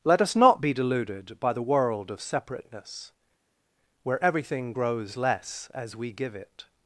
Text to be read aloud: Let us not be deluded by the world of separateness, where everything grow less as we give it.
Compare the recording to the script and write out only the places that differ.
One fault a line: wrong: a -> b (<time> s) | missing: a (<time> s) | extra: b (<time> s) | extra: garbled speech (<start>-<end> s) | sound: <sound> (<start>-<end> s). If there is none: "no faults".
wrong: grow -> grows (4.7 s)